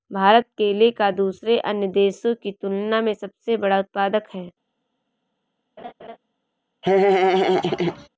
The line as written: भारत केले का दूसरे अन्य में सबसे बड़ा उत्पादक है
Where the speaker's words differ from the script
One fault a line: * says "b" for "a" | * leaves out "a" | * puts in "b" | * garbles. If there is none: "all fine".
* puts in "देशों की तुलना"